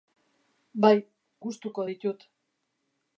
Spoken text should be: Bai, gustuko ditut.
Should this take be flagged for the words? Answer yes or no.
no